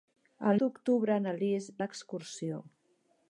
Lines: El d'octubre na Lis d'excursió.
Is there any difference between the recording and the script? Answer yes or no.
no